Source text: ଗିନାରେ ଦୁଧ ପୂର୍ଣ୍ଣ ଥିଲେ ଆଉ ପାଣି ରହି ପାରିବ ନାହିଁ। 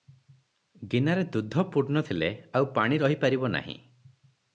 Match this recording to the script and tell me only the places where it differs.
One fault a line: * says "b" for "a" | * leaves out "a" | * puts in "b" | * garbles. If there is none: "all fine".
all fine